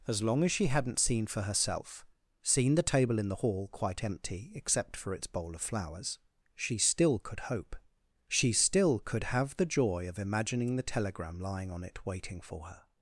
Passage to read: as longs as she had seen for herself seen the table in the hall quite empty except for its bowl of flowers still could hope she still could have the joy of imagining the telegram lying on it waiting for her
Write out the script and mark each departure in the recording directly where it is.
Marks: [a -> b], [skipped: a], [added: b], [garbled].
as [longs -> long] as she [had -> hadn't] seen for herself seen the table in the hall quite empty except for its bowl of flowers [added: she] still could hope she still could have the joy of imagining the telegram lying on it waiting for her